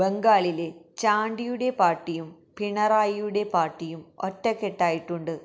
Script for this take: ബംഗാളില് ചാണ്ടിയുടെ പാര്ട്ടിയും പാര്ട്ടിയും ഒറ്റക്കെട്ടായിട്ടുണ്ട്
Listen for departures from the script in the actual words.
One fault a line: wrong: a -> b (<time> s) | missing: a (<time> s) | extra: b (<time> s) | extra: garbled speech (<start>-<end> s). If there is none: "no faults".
extra: പിണറായിയുടെ (2.6 s)